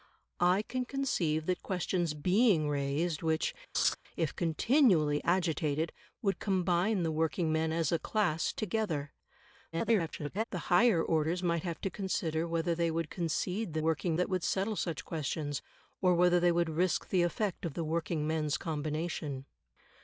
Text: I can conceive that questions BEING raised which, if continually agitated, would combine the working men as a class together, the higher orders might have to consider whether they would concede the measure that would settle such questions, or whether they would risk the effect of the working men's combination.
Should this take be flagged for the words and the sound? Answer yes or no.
yes